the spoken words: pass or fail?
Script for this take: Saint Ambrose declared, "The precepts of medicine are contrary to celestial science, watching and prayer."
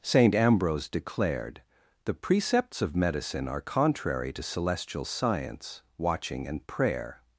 pass